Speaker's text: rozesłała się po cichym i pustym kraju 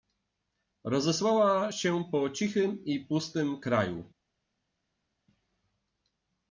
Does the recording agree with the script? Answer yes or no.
yes